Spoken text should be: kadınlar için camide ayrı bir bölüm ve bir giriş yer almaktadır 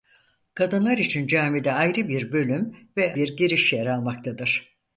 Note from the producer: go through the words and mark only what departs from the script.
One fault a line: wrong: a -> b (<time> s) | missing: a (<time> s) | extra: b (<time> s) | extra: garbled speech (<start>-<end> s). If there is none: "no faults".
no faults